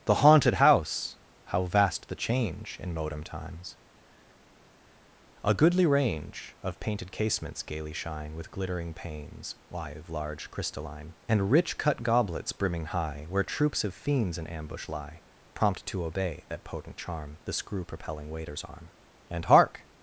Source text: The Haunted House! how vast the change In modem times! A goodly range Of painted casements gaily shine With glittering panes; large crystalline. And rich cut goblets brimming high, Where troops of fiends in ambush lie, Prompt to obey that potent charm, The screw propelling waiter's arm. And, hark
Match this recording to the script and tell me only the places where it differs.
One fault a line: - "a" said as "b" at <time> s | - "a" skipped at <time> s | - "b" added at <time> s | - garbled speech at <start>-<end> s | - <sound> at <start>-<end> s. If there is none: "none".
- "live" added at 9.7 s